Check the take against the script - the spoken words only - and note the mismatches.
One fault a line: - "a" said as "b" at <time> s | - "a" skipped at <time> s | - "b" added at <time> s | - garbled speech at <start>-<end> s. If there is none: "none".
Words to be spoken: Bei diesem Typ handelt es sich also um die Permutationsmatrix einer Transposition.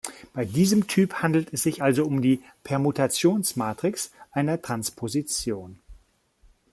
none